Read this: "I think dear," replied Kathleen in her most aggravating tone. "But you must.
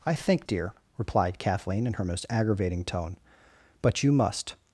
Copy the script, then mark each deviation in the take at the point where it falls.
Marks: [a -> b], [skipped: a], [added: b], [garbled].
"I think dear," replied Kathleen in her most aggravating tone. "But you must.